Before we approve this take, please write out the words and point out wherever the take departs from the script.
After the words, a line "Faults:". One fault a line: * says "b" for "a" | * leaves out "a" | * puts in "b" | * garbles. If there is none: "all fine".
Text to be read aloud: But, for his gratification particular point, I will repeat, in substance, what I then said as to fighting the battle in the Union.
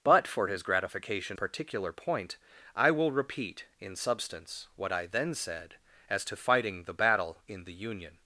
But, for his gratification particular point, I will repeat, in substance, what I then said as to fighting the battle in the Union.
Faults:
all fine